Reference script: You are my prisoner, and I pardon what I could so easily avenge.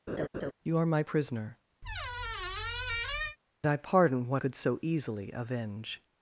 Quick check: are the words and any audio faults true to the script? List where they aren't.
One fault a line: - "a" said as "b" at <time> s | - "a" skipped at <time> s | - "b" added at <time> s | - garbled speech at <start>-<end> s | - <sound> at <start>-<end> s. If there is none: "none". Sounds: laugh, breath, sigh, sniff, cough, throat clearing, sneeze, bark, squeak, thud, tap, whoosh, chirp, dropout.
- laugh at 0.1-0.5 s
- "and" skipped at 1.6 s
- squeak at 1.8-3.4 s
- "I" skipped at 4.4 s